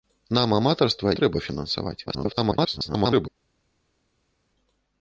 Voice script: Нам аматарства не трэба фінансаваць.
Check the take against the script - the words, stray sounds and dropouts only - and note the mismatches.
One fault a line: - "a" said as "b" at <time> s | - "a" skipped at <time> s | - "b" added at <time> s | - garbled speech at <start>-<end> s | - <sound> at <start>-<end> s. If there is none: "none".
- "не" skipped at 1.1 s
- garbled speech at 2.1-3.3 s